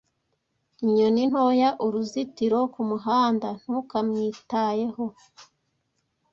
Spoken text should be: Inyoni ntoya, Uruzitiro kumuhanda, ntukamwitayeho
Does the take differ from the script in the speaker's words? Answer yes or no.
no